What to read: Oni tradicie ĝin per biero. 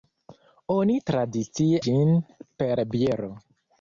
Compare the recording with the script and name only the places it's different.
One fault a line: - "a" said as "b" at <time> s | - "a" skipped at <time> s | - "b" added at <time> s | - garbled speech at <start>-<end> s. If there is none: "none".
none